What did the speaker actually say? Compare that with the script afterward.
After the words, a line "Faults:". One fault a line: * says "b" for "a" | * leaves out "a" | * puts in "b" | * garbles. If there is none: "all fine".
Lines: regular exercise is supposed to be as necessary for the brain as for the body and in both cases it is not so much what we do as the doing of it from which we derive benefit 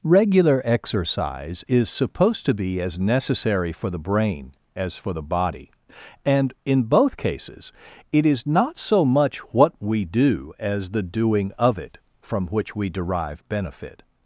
regular exercise is supposed to be as necessary for the brain as for the body and in both cases it is not so much what we do as the doing of it from which we derive benefit
Faults:
all fine